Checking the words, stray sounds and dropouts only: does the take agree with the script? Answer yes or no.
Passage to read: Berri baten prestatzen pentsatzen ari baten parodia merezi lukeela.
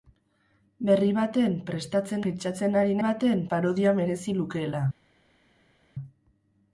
yes